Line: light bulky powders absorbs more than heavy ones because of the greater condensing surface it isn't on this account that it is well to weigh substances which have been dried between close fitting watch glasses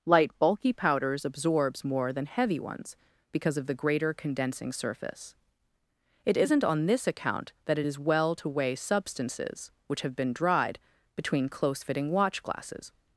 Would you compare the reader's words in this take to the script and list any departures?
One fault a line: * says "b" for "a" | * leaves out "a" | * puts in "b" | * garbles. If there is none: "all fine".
all fine